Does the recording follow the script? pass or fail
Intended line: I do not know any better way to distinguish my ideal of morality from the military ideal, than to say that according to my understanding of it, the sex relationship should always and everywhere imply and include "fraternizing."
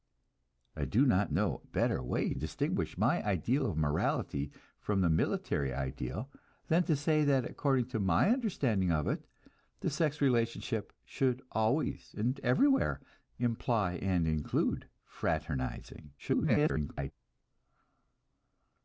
fail